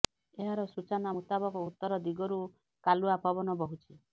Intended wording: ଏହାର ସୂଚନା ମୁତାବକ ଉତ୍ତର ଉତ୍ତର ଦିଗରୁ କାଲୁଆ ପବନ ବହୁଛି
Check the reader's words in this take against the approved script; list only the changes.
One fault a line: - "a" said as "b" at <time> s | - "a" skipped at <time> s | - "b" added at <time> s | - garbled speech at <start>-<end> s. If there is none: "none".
- "ଉତ୍ତର" skipped at 2.0 s